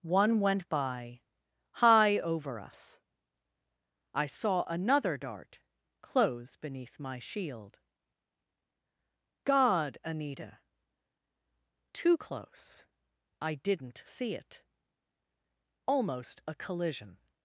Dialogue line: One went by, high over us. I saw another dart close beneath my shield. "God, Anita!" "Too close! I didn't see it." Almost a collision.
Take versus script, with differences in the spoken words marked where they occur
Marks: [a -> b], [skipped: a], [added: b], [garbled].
One went by, high over us. I saw another dart close beneath my shield. "God, Anita!" "Too close! I didn't see it." Almost a collision.